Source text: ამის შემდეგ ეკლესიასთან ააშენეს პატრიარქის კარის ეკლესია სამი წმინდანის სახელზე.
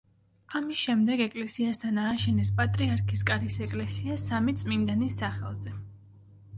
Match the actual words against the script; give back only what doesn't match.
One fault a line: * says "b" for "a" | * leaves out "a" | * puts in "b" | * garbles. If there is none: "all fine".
all fine